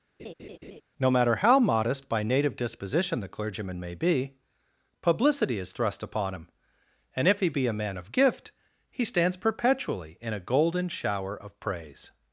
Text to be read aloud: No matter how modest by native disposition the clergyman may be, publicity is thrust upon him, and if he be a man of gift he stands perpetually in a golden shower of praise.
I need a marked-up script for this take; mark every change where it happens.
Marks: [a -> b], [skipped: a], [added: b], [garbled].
No matter how modest by native disposition the clergyman may be, publicity is thrust upon him, and if he be a man of gift he stands perpetually in a golden shower of praise.